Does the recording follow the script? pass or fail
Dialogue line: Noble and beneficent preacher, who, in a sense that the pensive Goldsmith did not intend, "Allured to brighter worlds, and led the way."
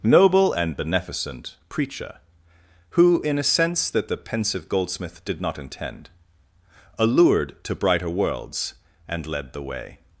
pass